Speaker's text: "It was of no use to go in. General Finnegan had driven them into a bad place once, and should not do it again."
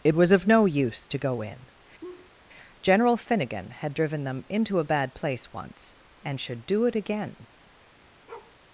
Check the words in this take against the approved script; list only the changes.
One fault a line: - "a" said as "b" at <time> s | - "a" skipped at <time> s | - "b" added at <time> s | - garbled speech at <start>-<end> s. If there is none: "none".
- "not" skipped at 6.7 s